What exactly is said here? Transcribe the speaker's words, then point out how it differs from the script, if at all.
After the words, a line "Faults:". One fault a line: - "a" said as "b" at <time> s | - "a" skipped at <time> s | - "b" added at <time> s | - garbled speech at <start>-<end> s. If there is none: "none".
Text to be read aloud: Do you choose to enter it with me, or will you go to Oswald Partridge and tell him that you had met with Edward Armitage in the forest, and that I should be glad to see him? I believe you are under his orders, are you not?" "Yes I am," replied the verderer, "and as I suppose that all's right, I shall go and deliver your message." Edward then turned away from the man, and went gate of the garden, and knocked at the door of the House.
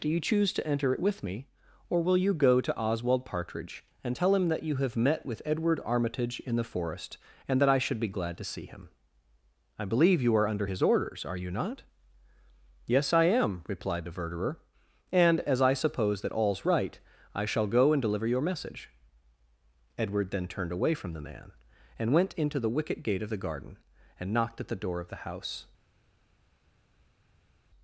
Do you choose to enter it with me, or will you go to Oswald Partridge and tell him that you have met with Edward Armitage in the forest, and that I should be glad to see him? I believe you are under his orders, are you not?" "Yes I am," replied the verderer, "and as I suppose that all's right, I shall go and deliver your message." Edward then turned away from the man, and went into the wicket gate of the garden, and knocked at the door of the House.
Faults:
- "had" said as "have" at 4.8 s
- "into the wicket" added at 22.3 s